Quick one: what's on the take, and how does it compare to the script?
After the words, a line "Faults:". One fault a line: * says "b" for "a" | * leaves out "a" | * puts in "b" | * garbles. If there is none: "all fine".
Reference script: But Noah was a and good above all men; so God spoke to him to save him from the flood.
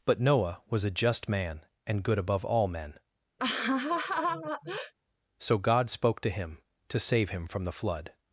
But Noah was a just man and good above all men; so God spoke to him to save him from the flood.
Faults:
* puts in "just man"